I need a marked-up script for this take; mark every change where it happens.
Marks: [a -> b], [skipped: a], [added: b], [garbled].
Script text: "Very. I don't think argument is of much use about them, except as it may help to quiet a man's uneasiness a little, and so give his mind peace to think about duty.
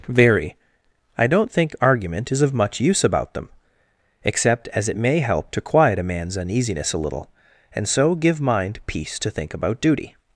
"Very. I don't think argument is of much use about them, except as it may help to quiet a man's uneasiness a little, and so give [skipped: his] mind peace to think about duty.